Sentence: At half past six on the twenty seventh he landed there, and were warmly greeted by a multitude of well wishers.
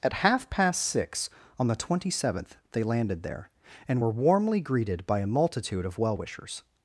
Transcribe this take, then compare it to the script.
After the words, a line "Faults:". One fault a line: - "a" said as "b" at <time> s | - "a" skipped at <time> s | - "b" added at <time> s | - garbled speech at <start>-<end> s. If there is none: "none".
At half past six on the twenty seventh they landed there, and were warmly greeted by a multitude of well wishers.
Faults:
- "he" said as "they" at 2.7 s